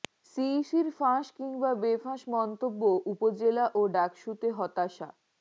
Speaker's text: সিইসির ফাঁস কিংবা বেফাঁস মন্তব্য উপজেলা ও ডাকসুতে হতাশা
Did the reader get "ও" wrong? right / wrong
right